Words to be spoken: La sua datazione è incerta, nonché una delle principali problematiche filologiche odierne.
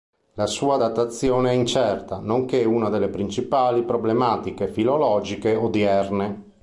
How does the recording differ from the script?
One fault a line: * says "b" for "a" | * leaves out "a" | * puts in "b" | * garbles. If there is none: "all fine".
all fine